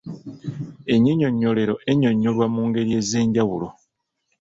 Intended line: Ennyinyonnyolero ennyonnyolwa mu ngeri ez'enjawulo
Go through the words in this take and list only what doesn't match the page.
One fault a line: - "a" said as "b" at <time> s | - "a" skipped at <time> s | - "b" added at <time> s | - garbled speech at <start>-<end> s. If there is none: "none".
none